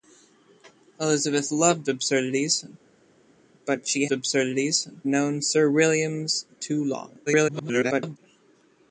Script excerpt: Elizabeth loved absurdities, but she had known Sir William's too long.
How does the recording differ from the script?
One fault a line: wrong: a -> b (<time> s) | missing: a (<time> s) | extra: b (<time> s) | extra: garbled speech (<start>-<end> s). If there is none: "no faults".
wrong: had -> absurdities (4.1 s)
extra: garbled speech (7.3-8.2 s)